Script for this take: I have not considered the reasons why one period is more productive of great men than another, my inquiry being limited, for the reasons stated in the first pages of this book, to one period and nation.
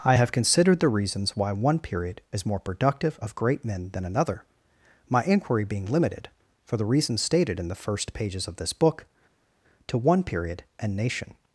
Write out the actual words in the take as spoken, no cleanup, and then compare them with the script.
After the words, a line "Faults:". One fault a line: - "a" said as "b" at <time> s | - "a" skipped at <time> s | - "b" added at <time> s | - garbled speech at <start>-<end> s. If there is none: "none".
I have considered the reasons why one period is more productive of great men than another, my inquiry being limited, for the reasons stated in the first pages of this book, to one period and nation.
Faults:
- "not" skipped at 0.3 s